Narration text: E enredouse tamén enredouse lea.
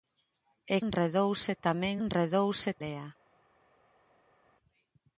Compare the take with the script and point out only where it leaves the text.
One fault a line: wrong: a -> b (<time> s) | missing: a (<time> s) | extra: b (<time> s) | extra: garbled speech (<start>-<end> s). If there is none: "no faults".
no faults